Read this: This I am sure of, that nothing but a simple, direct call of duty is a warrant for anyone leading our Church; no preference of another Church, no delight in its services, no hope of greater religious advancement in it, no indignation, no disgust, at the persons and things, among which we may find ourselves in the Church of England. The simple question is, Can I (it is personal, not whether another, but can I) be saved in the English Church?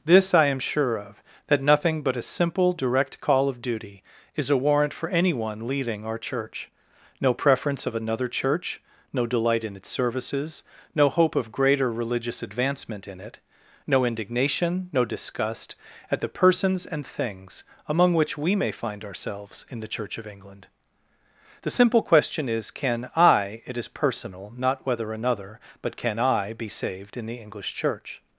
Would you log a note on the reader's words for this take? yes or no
no